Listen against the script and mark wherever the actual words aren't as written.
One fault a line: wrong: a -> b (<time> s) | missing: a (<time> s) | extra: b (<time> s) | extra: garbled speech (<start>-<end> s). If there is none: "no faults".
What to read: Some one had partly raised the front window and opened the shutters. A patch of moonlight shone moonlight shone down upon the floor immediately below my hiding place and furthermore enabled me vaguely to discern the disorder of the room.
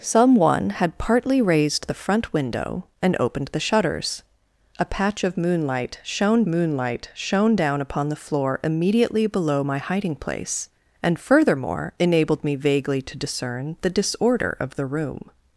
no faults